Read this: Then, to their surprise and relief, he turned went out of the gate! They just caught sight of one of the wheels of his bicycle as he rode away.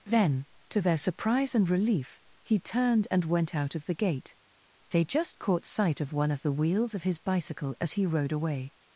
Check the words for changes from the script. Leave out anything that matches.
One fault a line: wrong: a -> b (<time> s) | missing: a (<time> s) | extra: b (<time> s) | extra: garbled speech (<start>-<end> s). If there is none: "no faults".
extra: and (3.1 s)